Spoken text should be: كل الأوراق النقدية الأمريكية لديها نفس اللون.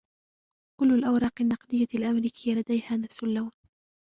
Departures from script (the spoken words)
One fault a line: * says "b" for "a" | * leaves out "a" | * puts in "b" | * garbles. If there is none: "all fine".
all fine